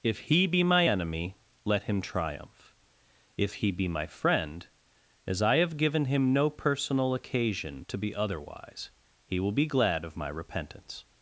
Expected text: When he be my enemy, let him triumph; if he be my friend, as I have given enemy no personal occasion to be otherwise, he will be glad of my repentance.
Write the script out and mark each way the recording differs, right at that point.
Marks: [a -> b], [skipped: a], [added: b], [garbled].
[When -> If] he be my enemy, let him triumph; if he be my friend, as I have given [enemy -> him] no personal occasion to be otherwise, he will be glad of my repentance.